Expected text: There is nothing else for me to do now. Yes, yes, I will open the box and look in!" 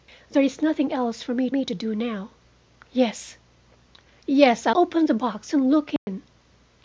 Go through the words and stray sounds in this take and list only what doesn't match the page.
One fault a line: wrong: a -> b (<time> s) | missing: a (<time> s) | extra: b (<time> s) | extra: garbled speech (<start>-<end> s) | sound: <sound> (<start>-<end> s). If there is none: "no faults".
extra: me (1.5 s)
missing: will (4.7 s)
sound: dropout (6.0-6.1 s)